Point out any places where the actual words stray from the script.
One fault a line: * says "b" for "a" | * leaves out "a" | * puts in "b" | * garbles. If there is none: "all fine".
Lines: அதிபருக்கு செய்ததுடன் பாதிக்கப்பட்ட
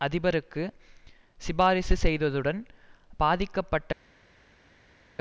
* puts in "சிபாரிசு"